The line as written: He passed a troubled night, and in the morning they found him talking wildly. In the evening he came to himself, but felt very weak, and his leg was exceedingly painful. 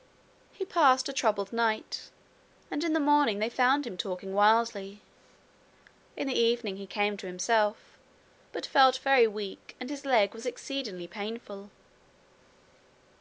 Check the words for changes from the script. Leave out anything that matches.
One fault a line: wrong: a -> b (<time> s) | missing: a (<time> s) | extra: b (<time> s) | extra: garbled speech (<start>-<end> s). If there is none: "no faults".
no faults